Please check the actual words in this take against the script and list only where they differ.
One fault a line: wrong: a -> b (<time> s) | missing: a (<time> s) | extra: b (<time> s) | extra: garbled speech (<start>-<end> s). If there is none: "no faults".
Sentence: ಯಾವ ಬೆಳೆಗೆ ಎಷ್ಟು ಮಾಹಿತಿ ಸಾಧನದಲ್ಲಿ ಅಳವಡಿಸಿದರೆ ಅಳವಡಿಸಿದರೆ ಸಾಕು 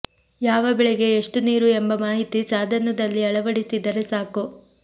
extra: ನೀರು ಎಂಬ (1.4 s)
missing: ಅಳವಡಿಸಿದರೆ (4.0 s)